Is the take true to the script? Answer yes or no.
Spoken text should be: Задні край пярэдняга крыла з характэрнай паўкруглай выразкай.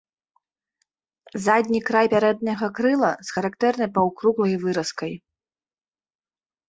yes